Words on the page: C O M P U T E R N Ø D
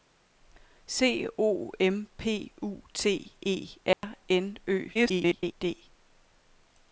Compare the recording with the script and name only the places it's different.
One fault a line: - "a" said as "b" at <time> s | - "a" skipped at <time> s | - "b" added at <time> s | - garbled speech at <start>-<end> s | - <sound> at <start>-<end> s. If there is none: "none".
- dropout at 3.9-4.0 s
- garbled speech at 4.9-5.5 s